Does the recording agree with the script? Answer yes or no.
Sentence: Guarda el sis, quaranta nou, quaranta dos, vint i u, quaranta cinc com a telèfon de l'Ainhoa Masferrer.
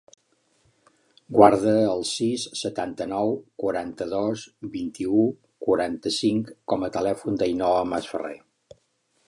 no